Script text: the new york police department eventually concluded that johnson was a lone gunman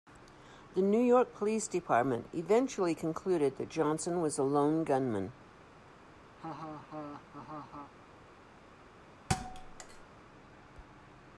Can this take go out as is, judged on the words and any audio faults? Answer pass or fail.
fail